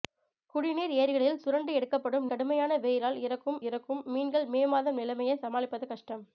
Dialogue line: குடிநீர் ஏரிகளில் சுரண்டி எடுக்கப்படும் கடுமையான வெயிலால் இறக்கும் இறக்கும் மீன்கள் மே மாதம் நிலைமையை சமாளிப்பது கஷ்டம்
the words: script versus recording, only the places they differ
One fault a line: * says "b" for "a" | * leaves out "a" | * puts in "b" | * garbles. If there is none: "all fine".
all fine